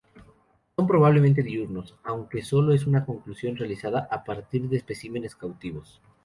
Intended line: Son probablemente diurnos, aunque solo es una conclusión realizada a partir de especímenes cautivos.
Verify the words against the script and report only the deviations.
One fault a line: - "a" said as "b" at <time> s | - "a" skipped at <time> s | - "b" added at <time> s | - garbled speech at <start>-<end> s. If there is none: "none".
none